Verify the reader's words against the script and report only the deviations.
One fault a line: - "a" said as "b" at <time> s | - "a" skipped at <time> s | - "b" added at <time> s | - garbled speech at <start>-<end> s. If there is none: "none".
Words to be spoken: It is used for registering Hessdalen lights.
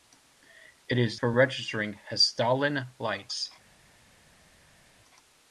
- "used" skipped at 1.2 s